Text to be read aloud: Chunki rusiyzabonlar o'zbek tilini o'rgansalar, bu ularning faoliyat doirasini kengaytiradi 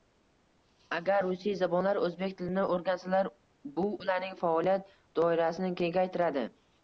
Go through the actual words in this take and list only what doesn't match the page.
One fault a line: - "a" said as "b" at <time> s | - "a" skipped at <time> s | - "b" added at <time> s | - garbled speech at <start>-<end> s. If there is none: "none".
- "Chunki" said as "Agar" at 1.0 s